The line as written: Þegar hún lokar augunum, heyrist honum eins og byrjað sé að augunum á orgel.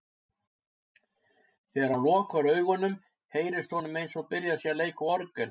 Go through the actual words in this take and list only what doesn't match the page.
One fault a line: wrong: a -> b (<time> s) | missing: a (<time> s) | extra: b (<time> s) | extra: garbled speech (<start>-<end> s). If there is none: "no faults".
wrong: hún -> hann (1.9 s)
wrong: augunum -> leika (4.8 s)